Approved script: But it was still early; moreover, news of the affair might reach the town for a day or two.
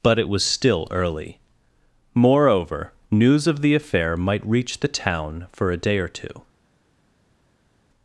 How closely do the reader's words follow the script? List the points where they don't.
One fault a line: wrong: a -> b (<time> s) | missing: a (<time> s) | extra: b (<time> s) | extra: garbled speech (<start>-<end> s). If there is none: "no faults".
no faults